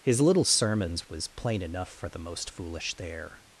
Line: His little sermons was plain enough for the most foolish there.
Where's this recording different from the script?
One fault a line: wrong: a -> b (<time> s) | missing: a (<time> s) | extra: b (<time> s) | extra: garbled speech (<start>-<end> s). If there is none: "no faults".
no faults